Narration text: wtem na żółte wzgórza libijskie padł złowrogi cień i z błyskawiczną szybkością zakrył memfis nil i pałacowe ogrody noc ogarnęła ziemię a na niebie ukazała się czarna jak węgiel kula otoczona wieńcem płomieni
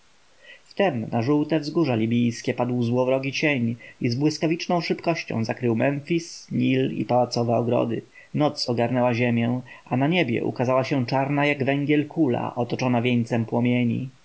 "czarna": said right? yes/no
yes